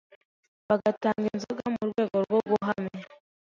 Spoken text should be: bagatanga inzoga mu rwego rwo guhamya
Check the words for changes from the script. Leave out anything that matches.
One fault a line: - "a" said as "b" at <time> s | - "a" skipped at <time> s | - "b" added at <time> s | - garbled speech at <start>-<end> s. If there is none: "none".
none